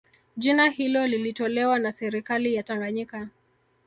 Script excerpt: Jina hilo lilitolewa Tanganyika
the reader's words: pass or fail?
fail